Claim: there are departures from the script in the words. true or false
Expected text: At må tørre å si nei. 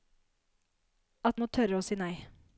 false